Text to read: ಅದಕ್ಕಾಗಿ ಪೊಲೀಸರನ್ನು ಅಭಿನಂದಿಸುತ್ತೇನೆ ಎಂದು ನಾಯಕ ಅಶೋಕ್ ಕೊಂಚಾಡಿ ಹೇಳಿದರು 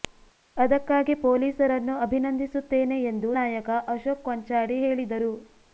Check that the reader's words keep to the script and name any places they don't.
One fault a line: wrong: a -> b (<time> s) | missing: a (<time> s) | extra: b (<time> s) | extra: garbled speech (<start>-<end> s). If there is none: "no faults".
no faults